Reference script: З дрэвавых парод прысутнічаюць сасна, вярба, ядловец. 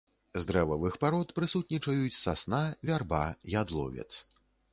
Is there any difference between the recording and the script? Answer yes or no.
no